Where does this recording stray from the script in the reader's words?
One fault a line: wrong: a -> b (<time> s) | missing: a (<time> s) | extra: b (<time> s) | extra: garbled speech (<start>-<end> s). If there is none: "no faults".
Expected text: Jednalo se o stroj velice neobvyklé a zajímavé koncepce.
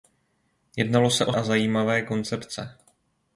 missing: stroj velice neobvyklé (1.3 s)